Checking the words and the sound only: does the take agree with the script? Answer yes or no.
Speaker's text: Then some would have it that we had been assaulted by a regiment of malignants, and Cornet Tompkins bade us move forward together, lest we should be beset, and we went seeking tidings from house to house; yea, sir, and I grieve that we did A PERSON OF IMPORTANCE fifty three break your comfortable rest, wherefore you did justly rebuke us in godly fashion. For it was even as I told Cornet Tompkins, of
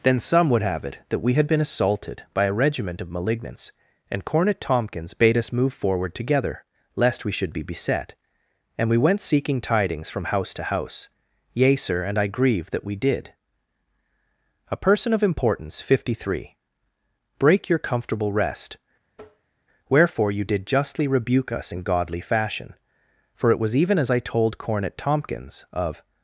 no